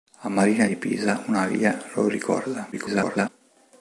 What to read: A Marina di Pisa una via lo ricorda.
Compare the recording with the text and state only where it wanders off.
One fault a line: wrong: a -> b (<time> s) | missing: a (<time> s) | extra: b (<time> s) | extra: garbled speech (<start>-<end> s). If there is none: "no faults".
extra: garbled speech (2.7-3.3 s)